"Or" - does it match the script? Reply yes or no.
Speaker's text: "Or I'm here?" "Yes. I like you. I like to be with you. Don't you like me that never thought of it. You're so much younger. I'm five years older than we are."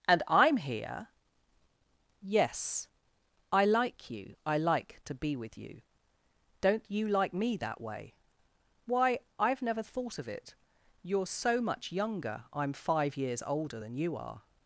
no